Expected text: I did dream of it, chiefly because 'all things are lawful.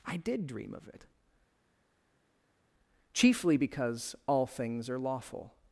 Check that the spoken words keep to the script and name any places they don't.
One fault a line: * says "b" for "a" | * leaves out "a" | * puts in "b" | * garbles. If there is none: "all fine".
all fine